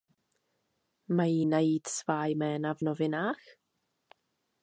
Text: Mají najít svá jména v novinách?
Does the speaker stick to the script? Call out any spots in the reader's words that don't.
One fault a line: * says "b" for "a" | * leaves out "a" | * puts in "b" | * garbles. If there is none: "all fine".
all fine